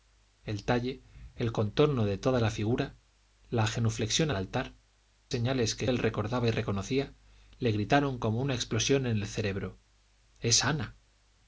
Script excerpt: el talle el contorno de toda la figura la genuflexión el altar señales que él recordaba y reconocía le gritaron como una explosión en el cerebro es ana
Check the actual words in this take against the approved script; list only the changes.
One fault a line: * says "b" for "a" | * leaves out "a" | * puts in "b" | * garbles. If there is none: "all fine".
all fine